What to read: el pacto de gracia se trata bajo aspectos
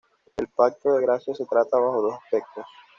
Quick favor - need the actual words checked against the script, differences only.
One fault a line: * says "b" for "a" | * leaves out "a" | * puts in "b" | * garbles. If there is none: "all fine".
* puts in "dos"